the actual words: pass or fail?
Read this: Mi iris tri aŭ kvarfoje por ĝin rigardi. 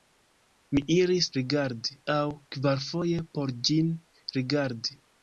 fail